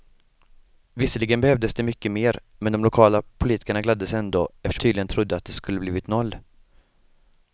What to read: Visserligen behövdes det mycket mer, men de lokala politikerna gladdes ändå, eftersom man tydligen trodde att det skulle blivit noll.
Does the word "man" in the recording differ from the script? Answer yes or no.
yes